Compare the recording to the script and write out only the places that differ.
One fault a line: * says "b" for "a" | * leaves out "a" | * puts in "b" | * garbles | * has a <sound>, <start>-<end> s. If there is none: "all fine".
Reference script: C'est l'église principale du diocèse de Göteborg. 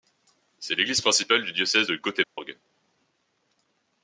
* has a dropout, 2.2-2.4 s